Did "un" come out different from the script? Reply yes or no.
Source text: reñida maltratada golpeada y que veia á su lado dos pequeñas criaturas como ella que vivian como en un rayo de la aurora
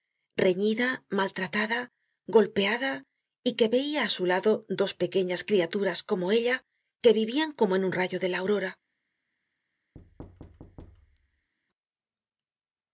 no